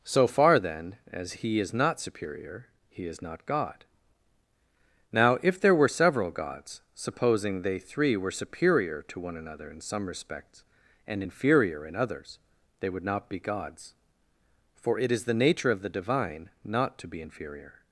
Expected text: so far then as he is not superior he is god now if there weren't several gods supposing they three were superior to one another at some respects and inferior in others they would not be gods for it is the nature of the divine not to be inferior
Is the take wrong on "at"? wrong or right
wrong